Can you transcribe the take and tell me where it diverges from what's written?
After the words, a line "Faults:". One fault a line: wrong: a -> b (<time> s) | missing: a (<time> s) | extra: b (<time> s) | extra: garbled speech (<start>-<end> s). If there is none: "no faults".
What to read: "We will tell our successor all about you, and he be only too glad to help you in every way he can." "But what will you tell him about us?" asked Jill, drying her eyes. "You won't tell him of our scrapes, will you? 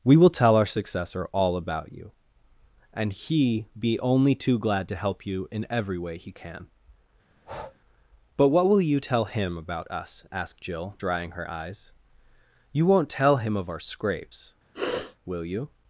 "We will tell our successor all about you, and he be only too glad to help you in every way he can." "But what will you tell him about us?" asked Jill, drying her eyes. "You won't tell him of our scrapes, will you?
Faults:
no faults